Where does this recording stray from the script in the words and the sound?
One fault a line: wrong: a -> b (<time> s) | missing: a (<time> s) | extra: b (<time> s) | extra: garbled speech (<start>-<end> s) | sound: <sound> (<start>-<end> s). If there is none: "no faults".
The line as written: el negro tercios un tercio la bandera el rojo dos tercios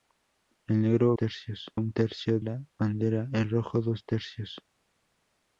no faults